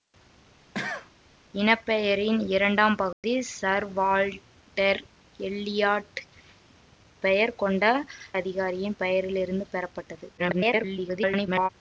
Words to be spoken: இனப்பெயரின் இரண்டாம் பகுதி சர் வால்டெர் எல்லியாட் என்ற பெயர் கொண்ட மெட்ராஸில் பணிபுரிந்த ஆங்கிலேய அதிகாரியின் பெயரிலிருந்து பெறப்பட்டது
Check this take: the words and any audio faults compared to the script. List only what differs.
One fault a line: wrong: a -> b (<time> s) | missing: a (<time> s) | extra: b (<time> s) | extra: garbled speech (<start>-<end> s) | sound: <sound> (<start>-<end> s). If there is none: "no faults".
sound: cough (0.7-1.1 s)
sound: dropout (3.1-3.2 s)
missing: என்ற (6.2 s)
missing: மெட்ராஸில் பணிபுரிந்த ஆங்கிலேய (7.8 s)
extra: garbled speech (10.4-11.7 s)